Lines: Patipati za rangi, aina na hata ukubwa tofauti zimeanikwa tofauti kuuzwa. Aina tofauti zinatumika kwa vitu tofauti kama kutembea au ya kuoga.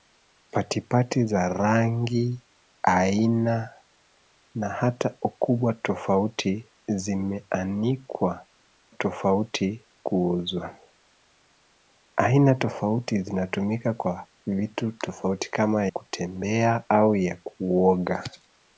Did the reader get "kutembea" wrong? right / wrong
right